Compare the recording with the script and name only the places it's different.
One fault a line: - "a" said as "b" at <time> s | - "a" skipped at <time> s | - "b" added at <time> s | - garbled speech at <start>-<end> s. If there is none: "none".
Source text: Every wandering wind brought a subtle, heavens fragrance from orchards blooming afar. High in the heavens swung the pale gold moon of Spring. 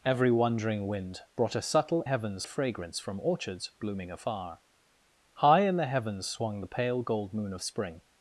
none